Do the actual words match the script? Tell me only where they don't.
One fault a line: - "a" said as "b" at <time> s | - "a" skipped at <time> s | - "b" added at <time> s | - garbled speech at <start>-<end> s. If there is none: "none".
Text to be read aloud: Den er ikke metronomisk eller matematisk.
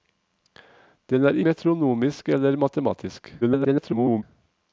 - "ikke" skipped at 1.4 s
- garbled speech at 3.4-4.2 s